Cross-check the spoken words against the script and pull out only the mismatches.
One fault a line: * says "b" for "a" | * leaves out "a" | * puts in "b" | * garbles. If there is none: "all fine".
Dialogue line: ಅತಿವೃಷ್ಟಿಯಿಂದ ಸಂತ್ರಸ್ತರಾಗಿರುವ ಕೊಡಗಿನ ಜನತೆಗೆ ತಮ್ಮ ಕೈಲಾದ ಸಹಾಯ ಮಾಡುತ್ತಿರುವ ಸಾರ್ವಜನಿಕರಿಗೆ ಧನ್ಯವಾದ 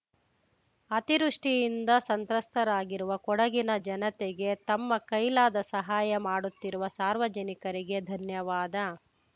all fine